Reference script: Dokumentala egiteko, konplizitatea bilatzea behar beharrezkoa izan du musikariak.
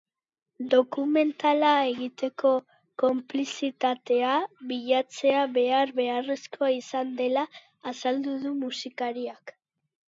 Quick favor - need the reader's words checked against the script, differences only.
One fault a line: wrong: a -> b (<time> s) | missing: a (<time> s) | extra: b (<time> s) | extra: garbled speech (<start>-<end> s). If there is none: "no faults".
extra: dela azaldu (7.2 s)